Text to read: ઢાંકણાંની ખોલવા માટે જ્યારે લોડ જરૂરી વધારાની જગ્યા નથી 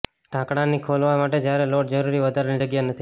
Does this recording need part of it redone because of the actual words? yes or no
no